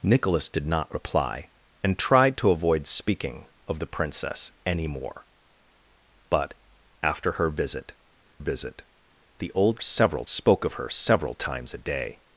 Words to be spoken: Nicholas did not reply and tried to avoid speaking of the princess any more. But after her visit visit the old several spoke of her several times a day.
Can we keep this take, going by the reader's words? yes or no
yes